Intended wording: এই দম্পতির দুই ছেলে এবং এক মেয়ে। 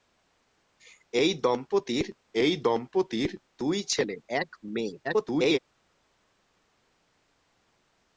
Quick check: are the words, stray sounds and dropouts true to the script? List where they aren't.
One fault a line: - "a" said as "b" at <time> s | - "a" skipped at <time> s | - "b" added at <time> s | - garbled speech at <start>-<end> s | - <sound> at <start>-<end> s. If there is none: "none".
- "এই দম্পতির" added at 2.3 s
- "এবং" skipped at 4.2 s
- garbled speech at 5.0-5.6 s